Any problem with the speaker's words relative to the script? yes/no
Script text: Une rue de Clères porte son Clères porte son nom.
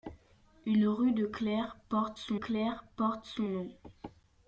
no